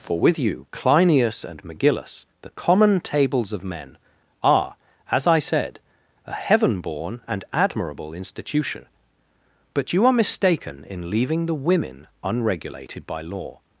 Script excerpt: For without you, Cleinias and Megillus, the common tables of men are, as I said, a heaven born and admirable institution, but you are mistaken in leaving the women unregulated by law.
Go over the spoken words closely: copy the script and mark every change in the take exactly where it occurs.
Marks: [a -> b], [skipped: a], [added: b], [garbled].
For [without -> with] you, Cleinias and Megillus, the common tables of men are, as I said, a heaven born and admirable institution, but you are mistaken in leaving the women unregulated by law.